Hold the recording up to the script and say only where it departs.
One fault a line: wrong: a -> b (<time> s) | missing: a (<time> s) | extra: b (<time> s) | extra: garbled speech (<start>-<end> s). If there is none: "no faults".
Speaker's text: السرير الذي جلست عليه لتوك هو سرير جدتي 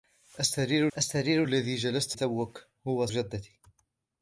extra: السرير (1.0 s)
missing: عليه (2.2 s)
missing: سرير (3.1 s)